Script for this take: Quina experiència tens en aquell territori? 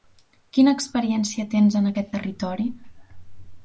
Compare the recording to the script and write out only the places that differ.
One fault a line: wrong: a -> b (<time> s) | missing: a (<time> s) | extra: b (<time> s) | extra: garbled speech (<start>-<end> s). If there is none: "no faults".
wrong: aquell -> aquest (1.9 s)